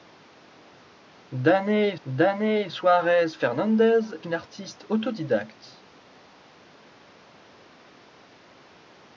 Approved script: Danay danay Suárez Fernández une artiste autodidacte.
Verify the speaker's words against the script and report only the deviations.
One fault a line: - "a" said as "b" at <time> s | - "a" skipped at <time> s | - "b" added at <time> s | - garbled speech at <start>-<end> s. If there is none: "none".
none